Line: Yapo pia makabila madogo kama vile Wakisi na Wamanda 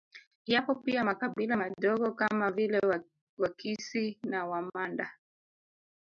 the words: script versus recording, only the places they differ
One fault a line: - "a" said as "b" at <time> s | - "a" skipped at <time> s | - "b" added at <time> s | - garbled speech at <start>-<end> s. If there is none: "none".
none